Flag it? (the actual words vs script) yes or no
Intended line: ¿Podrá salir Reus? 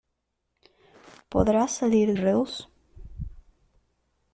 no